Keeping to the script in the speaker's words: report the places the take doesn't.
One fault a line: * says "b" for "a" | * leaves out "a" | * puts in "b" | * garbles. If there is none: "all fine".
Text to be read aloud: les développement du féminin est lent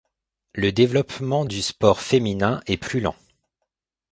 * says "le" for "les"
* puts in "sport"
* puts in "plus"